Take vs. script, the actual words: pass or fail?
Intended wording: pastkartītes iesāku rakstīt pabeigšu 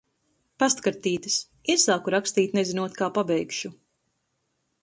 fail